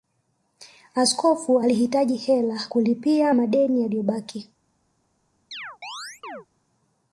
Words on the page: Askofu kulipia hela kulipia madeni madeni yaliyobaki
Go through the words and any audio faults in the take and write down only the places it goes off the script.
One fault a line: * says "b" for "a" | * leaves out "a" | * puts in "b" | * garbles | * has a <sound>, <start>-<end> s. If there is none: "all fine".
* says "alihitaji" for "kulipia"
* leaves out "madeni"
* has a chirp, 5.5-6.5 s